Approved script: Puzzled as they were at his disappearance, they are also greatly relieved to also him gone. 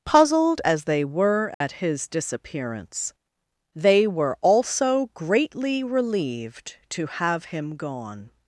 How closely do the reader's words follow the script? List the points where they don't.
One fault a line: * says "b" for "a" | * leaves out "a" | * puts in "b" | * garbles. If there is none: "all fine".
* says "were" for "are"
* says "have" for "also"